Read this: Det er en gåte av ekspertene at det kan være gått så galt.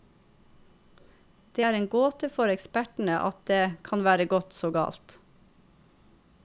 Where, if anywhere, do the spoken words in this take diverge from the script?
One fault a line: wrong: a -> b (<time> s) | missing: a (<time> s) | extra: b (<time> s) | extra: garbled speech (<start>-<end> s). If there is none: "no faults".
wrong: av -> for (2.3 s)